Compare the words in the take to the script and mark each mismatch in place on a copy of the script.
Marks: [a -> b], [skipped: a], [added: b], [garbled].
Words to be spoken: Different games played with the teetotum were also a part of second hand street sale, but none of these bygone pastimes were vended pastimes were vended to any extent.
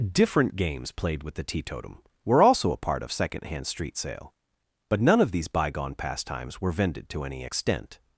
Different games played with the teetotum were also a part of second hand street sale, but none of these bygone pastimes were vended [skipped: pastimes were vended] to any extent.